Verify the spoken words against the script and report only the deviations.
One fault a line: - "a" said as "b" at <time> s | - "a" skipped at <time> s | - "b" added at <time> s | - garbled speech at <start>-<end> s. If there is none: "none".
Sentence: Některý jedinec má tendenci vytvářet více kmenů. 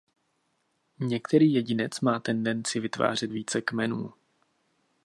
none